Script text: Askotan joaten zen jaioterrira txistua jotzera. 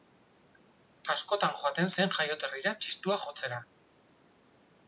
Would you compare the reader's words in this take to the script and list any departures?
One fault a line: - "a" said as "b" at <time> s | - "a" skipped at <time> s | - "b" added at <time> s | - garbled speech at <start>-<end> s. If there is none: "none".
none